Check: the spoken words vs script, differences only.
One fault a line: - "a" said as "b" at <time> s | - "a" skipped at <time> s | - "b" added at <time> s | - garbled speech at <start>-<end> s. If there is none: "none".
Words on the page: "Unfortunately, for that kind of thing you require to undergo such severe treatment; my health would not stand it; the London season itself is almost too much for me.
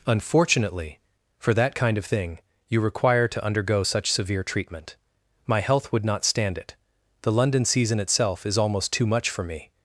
none